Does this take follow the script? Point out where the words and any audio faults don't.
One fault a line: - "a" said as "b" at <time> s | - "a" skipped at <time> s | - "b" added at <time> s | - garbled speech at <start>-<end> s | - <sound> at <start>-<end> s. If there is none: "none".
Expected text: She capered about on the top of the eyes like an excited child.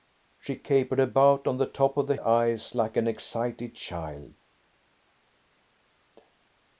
none